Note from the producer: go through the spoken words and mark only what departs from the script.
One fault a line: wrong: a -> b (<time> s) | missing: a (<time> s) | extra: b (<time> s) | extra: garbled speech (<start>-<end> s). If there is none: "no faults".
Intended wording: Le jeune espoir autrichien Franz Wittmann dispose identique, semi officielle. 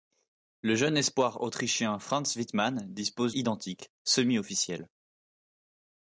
no faults